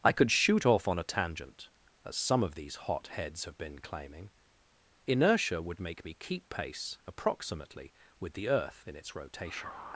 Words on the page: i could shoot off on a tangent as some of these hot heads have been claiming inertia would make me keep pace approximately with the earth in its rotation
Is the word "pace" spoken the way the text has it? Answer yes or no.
yes